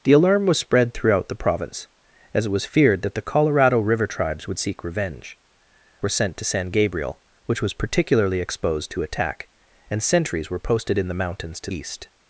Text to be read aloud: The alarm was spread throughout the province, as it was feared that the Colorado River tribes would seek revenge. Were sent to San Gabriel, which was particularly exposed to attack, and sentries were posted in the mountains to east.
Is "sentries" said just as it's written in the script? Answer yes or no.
yes